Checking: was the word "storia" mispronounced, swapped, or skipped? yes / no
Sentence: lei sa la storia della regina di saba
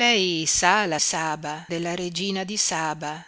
yes